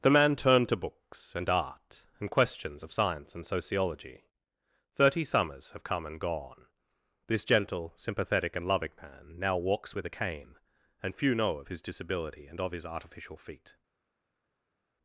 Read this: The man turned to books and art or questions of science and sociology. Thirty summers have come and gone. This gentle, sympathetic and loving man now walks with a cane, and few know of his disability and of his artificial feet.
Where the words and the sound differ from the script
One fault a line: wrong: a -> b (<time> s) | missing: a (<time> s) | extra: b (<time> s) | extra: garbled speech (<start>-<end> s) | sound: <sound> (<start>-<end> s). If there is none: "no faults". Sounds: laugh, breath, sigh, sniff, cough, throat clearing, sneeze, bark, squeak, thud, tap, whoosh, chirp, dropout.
wrong: or -> and (2.2 s)